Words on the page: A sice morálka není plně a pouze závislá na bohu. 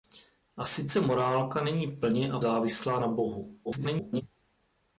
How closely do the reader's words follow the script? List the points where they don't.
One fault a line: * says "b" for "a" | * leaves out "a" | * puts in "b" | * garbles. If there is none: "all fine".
* leaves out "pouze"
* garbles